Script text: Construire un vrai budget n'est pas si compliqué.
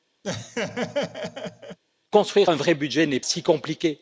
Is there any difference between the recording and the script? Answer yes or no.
yes